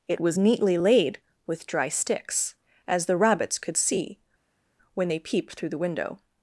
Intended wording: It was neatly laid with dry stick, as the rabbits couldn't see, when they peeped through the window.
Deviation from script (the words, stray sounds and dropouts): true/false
true